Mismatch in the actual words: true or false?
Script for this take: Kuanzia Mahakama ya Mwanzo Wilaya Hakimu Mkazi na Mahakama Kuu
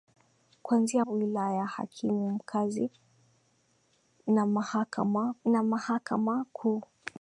true